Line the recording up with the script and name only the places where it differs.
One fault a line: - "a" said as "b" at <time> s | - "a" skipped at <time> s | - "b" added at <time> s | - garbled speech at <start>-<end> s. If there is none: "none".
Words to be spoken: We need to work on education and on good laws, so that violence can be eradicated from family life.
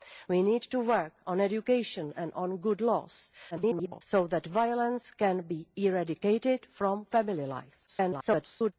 - garbled speech at 3.5-4.0 s
- garbled speech at 7.9-8.7 s